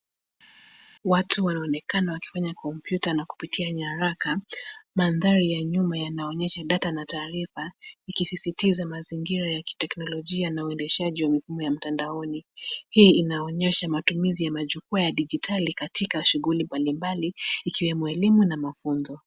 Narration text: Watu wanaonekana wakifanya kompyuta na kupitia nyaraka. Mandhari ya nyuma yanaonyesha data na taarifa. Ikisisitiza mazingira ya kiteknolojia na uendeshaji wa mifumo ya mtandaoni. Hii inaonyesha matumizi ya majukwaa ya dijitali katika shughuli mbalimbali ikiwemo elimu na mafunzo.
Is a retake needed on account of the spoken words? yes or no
no